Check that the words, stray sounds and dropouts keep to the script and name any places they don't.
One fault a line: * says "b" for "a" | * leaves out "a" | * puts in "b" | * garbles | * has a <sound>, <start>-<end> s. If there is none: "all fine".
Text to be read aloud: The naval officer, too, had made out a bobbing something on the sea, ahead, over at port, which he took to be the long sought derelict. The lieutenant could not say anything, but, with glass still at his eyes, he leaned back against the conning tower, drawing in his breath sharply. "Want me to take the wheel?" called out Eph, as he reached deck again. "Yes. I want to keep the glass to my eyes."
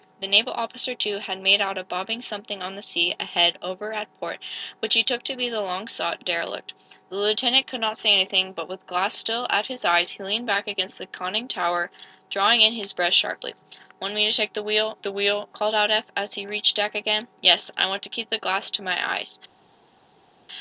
* puts in "the wheel"